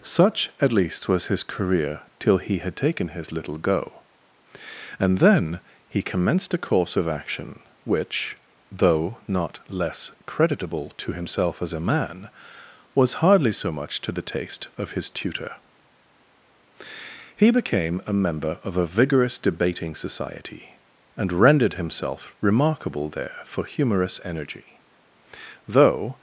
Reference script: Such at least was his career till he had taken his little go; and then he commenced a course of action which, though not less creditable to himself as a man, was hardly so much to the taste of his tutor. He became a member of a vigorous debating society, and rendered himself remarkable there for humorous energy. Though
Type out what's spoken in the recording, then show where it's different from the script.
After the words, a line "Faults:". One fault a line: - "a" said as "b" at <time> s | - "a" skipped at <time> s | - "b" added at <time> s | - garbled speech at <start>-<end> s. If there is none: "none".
Such at least was his career till he had taken his little go; and then he commenced a course of action which, though not less creditable to himself as a man, was hardly so much to the taste of his tutor. He became a member of a vigorous debating society, and rendered himself remarkable there for humorous energy. Though
Faults:
none